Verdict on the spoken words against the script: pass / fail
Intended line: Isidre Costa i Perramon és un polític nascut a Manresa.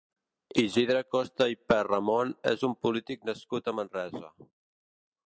pass